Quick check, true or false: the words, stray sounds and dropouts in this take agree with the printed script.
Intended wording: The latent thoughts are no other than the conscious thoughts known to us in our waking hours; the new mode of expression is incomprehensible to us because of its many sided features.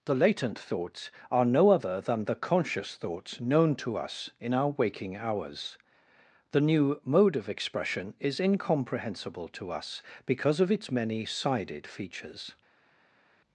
true